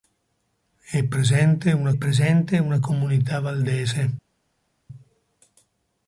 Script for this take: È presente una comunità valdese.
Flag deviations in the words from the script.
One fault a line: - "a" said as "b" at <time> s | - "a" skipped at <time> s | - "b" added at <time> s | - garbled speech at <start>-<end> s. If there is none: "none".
- "presente una" added at 1.9 s